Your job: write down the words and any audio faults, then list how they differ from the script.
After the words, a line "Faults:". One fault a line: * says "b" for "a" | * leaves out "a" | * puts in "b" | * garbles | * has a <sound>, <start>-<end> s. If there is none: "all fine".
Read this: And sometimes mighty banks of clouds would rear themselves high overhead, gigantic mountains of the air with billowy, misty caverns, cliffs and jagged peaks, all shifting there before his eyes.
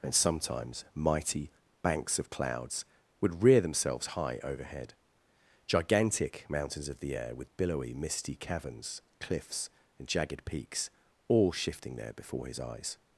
And sometimes mighty banks of clouds would rear themselves high overhead, gigantic mountains of the air with billowy, misty caverns, cliffs and jagged peaks, all shifting there before his eyes.
Faults:
all fine